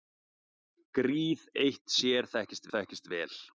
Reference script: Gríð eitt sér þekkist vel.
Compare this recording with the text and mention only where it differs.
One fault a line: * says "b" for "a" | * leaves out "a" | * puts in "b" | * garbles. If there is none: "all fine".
* puts in "þekkist"